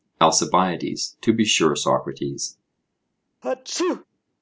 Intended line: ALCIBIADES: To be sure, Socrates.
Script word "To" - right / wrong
right